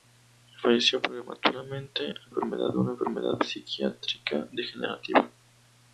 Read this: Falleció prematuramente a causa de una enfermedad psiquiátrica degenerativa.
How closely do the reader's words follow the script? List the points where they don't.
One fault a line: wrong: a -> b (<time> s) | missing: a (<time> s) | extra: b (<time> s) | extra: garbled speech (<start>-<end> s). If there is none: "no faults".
wrong: causa -> enfermedad (2.3 s)